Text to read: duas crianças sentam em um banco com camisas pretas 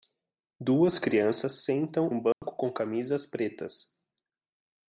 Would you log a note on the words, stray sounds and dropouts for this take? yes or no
yes